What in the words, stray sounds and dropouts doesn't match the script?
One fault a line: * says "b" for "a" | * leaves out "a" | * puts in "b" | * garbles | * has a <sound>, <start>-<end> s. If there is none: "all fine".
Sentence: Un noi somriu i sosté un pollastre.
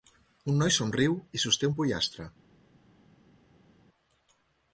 all fine